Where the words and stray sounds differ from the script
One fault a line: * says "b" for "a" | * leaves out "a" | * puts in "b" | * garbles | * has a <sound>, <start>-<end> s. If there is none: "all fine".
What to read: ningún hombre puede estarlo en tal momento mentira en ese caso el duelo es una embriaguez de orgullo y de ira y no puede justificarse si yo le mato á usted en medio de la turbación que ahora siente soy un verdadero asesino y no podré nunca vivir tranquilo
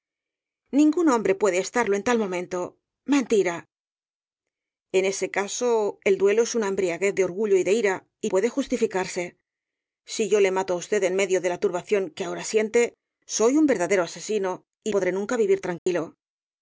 * leaves out "no"
* leaves out "no"
* has a dropout, 15.8-15.9 s